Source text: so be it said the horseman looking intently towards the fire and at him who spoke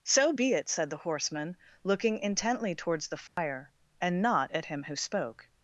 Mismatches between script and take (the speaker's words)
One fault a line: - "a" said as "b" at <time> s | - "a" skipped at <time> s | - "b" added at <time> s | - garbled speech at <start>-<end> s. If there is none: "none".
- "not" added at 4.2 s